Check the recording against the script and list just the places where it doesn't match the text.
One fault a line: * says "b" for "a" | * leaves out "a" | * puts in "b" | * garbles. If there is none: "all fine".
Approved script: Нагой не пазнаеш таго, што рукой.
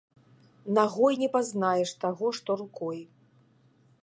all fine